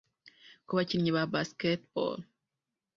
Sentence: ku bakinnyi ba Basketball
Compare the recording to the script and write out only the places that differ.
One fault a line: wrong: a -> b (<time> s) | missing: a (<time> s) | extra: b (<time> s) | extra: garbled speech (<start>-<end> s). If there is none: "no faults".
no faults